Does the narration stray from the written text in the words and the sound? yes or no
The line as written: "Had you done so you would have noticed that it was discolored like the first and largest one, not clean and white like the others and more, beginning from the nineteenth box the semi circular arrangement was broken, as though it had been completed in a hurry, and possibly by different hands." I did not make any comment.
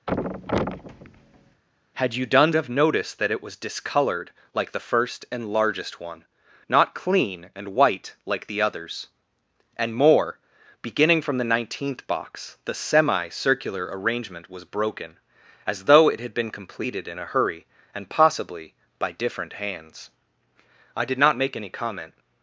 yes